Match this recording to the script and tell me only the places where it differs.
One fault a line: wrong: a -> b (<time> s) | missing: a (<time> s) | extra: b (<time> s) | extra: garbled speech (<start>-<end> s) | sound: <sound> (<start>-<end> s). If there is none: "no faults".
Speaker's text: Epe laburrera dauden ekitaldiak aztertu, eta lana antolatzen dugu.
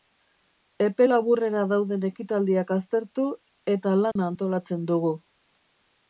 sound: dropout (4.1-4.2 s)